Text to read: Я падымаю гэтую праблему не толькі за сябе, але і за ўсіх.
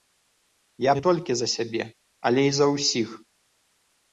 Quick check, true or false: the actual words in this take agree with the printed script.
false